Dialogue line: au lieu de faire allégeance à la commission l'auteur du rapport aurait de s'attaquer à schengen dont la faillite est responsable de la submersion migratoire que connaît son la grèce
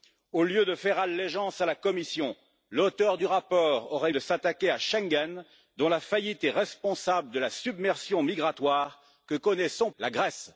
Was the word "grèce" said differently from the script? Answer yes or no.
no